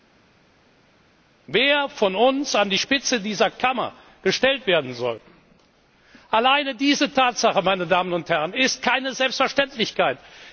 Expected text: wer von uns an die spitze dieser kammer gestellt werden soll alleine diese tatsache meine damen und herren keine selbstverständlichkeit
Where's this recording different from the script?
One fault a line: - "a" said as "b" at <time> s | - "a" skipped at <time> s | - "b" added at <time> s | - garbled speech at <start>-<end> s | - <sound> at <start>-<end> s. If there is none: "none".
- "ist" added at 8.5 s